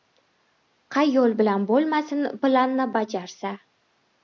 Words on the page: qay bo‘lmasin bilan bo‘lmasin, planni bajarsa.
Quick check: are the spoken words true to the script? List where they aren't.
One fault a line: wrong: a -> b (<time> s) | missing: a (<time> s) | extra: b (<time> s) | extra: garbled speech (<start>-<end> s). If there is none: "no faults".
wrong: bo‘lmasin -> yo‘l (1.2 s)